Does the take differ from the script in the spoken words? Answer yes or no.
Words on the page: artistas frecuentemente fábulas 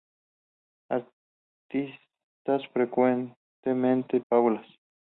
no